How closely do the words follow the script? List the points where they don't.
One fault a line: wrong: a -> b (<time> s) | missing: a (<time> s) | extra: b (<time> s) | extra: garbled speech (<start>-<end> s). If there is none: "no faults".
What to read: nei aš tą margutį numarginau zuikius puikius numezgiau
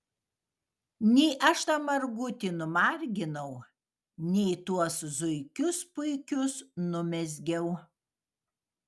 extra: nei tuos (4.3 s)